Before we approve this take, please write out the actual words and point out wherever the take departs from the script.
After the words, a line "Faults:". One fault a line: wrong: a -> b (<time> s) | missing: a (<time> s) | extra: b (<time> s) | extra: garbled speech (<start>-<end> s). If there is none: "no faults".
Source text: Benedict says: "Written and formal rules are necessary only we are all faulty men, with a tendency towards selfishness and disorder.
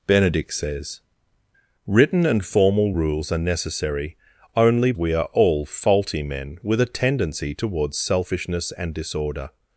Benedict says: "Written and formal rules are necessary only we are all faulty men, with a tendency towards selfishness and disorder.
Faults:
no faults